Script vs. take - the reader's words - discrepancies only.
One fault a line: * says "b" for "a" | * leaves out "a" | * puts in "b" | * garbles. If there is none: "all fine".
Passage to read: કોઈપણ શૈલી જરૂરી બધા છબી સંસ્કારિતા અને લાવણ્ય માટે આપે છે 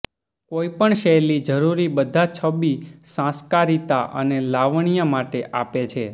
all fine